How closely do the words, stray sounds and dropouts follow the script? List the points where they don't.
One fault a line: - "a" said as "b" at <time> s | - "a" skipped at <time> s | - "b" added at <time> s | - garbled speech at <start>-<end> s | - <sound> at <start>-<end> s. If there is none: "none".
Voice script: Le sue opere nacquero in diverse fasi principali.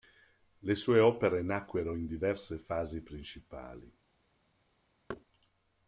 - thud at 5.1-5.2 s